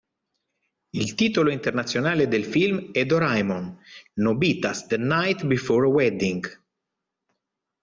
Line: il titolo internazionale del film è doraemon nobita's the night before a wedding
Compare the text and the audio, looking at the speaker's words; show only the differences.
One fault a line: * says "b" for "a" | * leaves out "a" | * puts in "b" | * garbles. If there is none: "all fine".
all fine